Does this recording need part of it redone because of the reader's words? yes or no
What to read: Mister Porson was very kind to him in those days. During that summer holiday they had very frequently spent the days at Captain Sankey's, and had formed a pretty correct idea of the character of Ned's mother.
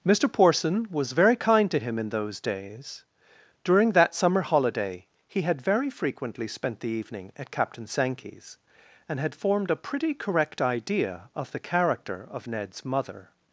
yes